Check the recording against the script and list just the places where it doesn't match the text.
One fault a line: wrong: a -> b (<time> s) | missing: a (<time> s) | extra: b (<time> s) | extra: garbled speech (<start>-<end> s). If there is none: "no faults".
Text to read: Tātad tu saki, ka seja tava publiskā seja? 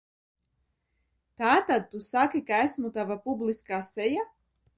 wrong: seja -> esmu (2.7 s)